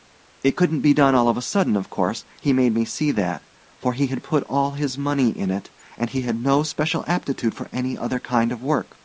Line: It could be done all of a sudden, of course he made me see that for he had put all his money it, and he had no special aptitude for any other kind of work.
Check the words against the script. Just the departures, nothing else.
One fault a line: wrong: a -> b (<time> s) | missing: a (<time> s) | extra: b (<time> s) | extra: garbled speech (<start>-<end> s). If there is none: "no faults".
wrong: could -> couldn't (0.5 s)
extra: in (5.4 s)